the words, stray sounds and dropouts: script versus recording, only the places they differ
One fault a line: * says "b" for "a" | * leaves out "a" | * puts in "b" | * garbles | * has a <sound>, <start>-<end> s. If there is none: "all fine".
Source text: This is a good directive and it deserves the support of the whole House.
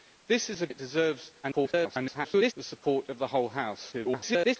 * leaves out "good directive and"
* garbles
* garbles